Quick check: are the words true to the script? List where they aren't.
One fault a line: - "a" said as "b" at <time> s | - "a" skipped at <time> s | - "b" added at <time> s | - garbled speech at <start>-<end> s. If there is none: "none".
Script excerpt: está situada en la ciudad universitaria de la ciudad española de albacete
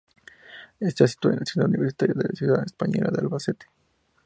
none